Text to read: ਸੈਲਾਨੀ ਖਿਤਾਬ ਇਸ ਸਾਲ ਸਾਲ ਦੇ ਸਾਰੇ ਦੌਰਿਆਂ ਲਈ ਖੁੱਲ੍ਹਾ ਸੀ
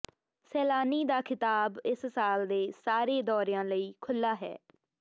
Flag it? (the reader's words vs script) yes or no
yes